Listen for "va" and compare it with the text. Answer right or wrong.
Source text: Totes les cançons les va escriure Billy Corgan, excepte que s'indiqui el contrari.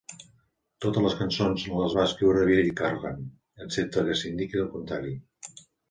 right